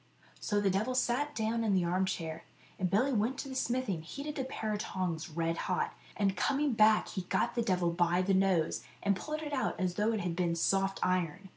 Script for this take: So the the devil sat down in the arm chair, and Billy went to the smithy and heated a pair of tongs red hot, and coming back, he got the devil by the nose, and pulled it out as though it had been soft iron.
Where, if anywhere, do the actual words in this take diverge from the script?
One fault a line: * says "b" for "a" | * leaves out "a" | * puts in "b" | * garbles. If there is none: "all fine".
* leaves out "the"